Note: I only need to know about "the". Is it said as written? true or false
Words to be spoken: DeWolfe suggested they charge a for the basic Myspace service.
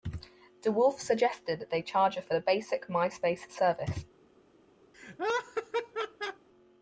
true